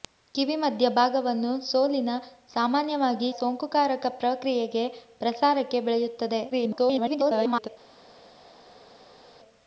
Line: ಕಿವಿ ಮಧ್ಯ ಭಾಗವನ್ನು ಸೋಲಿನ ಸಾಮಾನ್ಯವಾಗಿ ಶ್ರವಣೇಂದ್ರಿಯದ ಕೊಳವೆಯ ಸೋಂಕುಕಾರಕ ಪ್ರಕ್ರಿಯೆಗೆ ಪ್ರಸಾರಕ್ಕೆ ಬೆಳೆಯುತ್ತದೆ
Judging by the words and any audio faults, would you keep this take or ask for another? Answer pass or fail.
fail